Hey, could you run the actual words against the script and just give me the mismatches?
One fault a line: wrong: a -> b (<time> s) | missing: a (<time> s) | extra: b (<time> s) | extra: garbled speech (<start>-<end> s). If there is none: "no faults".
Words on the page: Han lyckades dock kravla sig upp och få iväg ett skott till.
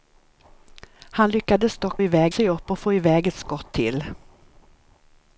wrong: kravla -> iväg (2.0 s)